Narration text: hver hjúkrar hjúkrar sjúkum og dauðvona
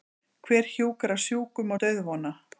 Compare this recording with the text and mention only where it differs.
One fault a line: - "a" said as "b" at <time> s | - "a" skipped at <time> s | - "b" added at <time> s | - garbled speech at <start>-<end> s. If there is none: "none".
- "hjúkrar" skipped at 1.2 s